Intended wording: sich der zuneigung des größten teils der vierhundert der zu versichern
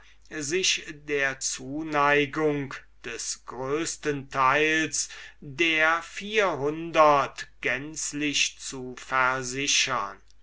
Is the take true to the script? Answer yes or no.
no